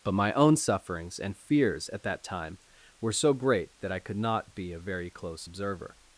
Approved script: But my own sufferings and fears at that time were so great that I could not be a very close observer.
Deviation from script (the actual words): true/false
false